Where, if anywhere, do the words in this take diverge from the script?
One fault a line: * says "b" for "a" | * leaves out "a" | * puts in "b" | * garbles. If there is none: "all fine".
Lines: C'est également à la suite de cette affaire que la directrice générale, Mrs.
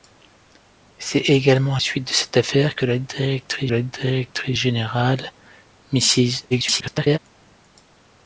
* leaves out "la"
* puts in "la directrice"
* garbles